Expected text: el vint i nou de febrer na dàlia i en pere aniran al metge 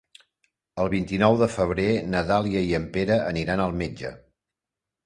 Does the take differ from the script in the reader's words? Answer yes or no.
no